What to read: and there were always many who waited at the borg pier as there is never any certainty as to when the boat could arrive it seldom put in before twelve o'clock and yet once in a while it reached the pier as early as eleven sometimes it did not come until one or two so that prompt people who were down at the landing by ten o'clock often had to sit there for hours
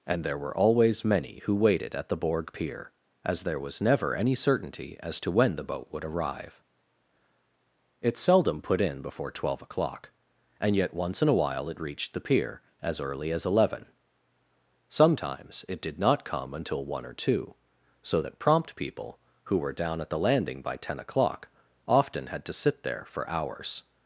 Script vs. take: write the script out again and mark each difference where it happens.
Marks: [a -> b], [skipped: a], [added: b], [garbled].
and there were always many who waited at the borg pier as there [is -> was] never any certainty as to when the boat [could -> would] arrive it seldom put in before twelve o'clock and yet once in a while it reached the pier as early as eleven sometimes it did not come until one or two so that prompt people who were down at the landing by ten o'clock often had to sit there for hours